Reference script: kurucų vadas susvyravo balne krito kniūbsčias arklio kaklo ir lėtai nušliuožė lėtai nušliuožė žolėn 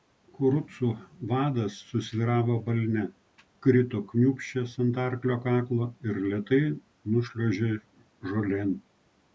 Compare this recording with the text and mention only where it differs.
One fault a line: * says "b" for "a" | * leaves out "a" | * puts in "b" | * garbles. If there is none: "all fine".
* puts in "ant"
* leaves out "lėtai nušliuožė"